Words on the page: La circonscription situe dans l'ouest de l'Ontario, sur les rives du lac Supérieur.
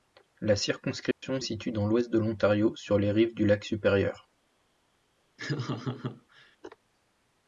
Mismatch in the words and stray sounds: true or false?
true